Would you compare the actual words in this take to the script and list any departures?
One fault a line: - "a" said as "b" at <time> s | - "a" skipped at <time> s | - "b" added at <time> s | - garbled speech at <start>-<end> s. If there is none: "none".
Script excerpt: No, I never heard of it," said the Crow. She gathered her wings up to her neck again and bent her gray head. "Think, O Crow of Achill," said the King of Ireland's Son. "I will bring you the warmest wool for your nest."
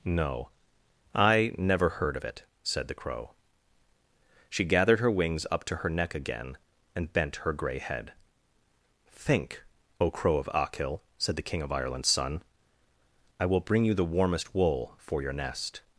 none